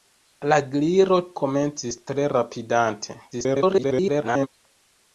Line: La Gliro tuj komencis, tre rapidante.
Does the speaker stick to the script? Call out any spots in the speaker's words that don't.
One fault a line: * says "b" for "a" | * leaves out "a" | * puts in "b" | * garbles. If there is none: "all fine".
* leaves out "tuj"
* garbles